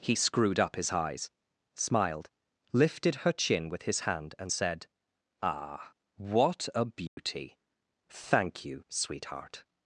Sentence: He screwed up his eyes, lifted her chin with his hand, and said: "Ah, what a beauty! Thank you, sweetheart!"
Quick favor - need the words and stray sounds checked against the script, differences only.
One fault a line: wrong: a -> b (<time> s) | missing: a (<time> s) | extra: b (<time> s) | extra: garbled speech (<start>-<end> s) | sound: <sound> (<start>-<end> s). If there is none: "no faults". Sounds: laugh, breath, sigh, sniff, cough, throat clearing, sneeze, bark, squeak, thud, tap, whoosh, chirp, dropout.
extra: smiled (1.8 s)
sound: dropout (7.1-7.2 s)